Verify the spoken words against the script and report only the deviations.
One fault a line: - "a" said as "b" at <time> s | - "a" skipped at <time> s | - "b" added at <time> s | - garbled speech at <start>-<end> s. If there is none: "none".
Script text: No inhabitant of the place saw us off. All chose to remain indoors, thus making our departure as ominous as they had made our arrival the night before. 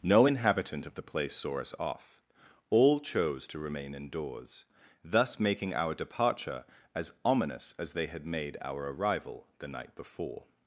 none